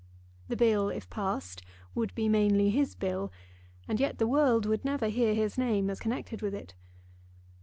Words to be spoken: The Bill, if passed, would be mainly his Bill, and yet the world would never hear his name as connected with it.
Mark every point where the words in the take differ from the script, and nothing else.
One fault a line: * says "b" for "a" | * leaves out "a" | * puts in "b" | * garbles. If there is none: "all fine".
all fine